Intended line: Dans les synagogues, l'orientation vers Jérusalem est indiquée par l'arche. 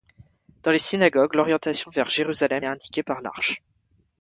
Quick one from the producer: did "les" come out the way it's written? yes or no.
yes